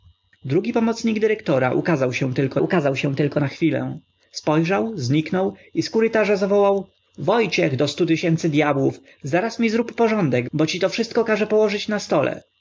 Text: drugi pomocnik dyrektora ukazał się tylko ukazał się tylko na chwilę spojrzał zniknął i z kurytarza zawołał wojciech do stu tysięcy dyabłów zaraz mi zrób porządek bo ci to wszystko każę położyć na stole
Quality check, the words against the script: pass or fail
pass